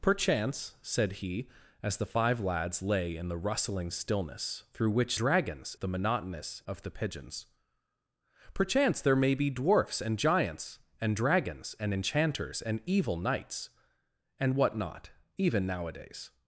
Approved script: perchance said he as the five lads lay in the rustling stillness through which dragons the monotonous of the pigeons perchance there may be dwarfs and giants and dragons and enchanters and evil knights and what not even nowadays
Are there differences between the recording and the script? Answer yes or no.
no